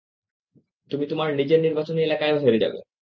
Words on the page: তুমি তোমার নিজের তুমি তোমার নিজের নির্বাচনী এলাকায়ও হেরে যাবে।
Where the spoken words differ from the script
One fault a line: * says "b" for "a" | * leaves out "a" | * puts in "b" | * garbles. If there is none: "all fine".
* leaves out "তুমি তোমার নিজের"